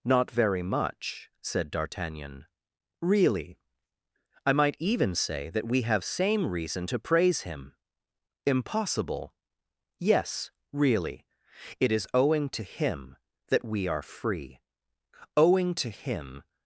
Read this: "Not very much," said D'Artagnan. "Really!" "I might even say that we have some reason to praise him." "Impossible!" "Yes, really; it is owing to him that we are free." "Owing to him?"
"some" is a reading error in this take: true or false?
true